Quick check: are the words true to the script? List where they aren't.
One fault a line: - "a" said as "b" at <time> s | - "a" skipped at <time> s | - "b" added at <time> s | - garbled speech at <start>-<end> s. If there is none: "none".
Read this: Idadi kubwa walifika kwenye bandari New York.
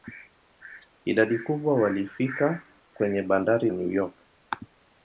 none